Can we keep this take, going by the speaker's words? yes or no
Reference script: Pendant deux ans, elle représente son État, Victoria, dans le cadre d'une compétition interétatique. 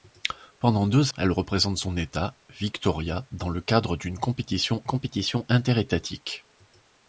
no